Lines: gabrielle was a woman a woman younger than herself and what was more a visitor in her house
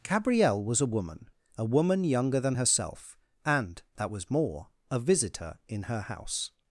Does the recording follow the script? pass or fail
fail